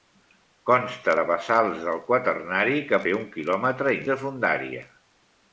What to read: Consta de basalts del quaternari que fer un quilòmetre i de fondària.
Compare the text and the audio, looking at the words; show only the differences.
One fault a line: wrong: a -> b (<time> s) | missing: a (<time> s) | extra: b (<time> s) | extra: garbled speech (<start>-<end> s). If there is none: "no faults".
no faults